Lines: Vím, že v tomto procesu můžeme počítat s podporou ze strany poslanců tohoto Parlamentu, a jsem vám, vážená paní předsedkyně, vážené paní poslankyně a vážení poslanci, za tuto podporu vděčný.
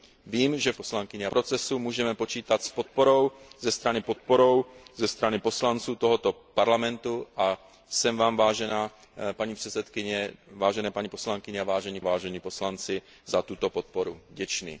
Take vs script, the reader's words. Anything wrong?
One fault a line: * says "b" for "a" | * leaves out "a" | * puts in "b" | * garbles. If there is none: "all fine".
* says "poslankyně" for "tomto"
* puts in "podporou ze strany"
* puts in "vážení"